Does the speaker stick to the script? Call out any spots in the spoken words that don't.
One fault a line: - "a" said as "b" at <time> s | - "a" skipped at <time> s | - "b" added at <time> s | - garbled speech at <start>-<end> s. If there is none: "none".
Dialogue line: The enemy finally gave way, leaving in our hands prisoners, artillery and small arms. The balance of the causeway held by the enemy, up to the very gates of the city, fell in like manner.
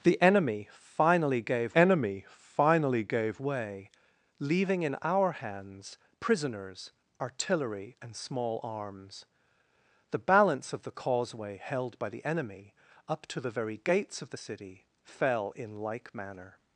- "enemy finally gave" added at 1.7 s